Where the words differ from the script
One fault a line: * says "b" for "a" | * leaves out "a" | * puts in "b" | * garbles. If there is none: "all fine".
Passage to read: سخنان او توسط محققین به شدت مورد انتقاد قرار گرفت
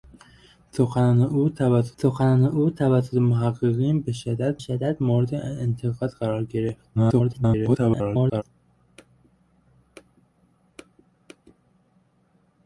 * puts in "سخنان او توسط"
* puts in "شدت"
* garbles